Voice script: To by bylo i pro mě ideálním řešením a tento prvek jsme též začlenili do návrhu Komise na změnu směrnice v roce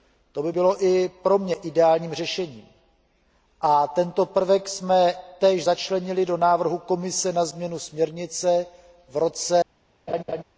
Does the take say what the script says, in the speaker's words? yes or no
yes